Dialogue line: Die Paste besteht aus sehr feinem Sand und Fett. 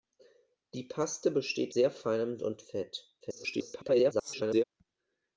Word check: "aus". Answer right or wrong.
wrong